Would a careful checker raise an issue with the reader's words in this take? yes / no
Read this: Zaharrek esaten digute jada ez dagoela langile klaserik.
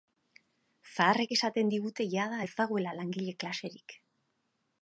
no